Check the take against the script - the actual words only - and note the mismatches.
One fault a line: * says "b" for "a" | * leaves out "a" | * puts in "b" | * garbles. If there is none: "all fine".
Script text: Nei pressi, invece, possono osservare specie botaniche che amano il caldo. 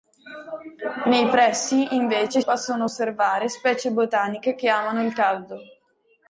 all fine